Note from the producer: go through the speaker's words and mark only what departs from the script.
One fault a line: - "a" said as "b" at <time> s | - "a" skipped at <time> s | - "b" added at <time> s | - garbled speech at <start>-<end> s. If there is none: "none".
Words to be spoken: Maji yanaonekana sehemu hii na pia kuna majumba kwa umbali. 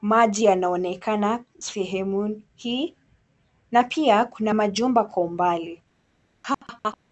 none